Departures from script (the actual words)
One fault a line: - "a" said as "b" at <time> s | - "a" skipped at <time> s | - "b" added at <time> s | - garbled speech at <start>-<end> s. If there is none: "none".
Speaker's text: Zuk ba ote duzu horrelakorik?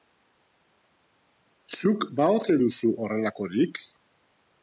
none